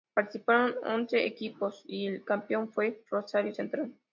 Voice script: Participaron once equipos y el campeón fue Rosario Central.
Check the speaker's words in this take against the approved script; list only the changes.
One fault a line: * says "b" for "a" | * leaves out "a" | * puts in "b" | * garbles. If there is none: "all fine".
all fine